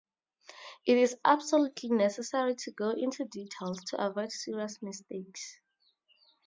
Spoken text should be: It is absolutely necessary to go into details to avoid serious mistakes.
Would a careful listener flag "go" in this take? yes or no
no